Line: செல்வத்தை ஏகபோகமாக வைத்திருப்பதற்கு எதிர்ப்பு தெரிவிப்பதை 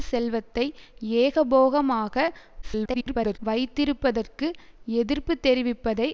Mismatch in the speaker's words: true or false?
true